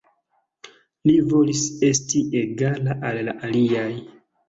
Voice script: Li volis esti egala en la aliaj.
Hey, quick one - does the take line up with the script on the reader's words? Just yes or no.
no